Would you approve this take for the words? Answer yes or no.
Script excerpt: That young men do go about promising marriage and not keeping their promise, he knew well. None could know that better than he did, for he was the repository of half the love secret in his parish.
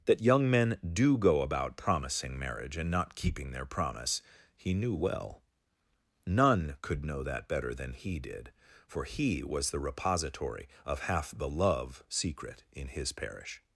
yes